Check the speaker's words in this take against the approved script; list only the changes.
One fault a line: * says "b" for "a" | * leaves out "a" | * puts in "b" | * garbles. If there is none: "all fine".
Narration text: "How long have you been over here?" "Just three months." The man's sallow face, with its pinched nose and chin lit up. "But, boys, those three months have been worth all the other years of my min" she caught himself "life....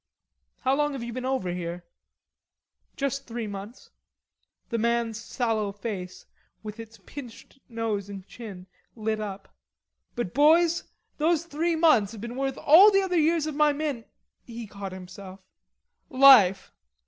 * says "he" for "she"